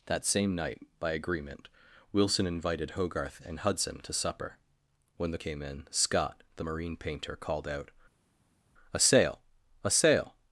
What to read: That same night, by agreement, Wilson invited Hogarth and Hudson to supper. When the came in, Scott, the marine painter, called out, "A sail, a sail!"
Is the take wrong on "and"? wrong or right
right